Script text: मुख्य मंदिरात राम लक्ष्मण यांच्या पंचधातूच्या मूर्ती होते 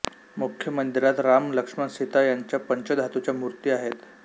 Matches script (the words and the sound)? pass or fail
fail